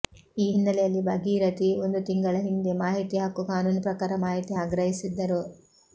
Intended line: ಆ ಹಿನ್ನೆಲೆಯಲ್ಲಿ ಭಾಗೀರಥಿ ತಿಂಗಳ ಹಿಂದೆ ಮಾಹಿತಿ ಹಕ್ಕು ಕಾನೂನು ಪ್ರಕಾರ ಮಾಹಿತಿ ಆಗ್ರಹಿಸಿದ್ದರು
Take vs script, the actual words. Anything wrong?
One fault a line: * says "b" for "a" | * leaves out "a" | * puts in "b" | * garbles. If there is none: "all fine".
* says "ಈ" for "ಆ"
* puts in "ಒಂದು"